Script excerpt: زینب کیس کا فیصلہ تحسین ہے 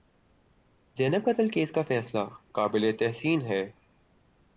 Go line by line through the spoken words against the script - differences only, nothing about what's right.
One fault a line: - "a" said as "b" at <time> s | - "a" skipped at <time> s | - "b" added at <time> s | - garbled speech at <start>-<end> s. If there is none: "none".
- "قتل" added at 1.2 s
- "قابل" added at 2.5 s